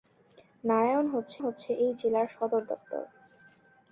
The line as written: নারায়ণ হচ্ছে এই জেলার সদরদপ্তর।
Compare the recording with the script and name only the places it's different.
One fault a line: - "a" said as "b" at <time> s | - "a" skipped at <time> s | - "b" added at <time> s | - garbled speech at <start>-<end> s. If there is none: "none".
- "হচ্ছে" added at 1.4 s